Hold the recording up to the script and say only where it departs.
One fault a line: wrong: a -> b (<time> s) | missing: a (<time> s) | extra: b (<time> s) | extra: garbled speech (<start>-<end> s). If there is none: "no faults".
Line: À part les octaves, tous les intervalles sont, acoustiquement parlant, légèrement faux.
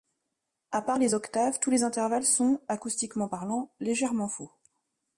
no faults